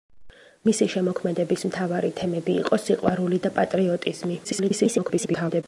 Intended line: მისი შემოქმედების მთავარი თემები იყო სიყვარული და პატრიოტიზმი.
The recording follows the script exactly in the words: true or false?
false